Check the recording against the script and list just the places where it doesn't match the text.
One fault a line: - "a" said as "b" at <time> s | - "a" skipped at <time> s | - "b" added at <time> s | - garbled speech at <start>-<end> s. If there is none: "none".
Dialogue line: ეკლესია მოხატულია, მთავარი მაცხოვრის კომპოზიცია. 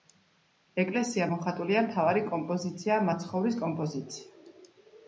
- "კომპოზიციაა" added at 2.3 s